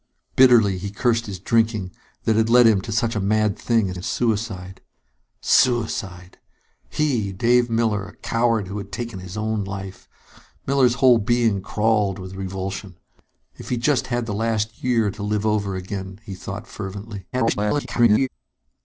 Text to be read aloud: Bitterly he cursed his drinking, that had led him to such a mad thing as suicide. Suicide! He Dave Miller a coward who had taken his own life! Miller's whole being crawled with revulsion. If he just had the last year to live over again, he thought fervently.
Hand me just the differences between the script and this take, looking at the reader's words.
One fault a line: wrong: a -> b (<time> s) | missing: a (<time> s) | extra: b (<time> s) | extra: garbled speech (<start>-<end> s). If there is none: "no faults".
extra: as (3.9 s)
extra: garbled speech (17.3-18.3 s)